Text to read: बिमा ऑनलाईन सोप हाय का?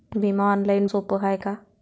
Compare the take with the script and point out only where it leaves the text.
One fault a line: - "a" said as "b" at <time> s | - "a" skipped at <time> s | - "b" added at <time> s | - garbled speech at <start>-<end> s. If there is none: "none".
none